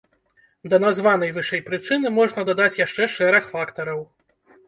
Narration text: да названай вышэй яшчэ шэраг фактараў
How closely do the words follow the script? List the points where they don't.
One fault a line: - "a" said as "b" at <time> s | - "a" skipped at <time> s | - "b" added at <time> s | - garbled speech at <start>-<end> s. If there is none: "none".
- "прычыны можна дадаць" added at 1.7 s